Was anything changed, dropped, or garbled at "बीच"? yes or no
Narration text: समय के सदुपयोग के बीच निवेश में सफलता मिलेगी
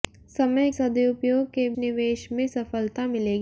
yes